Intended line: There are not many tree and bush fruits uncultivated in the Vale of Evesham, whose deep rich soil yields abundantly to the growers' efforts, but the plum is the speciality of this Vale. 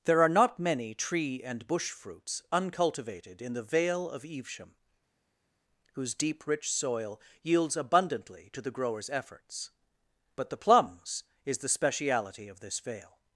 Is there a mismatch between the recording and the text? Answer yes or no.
yes